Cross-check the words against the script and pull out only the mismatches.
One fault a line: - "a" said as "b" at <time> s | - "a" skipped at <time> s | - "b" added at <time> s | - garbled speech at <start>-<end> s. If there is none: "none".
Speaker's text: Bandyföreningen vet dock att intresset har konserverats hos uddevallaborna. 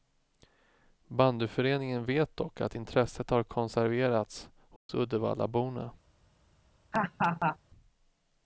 none